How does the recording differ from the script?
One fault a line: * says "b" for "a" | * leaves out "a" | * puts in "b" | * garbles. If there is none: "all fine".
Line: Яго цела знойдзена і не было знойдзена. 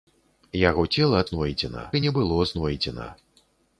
all fine